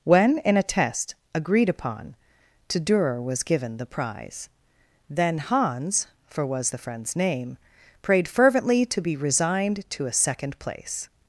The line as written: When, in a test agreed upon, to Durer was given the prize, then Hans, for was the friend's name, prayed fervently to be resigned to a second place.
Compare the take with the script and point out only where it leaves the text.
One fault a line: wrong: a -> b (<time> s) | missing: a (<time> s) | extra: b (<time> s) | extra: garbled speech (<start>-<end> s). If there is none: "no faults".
no faults